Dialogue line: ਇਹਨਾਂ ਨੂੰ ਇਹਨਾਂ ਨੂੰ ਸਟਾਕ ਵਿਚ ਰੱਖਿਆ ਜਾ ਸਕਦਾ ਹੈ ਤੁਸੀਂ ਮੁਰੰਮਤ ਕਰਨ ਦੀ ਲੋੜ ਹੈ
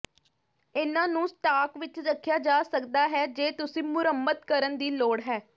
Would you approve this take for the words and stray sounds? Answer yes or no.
no